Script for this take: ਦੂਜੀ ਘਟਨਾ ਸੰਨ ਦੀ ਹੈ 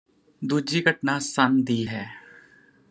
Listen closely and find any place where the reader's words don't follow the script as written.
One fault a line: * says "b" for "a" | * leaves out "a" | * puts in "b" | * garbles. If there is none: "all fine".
all fine